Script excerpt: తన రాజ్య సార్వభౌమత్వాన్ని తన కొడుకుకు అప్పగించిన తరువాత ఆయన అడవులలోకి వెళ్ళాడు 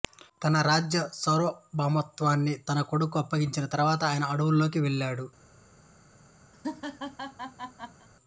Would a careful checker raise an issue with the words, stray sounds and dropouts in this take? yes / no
yes